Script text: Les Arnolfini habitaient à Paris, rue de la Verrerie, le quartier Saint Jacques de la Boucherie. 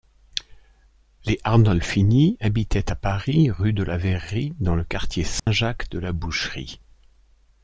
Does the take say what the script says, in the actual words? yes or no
no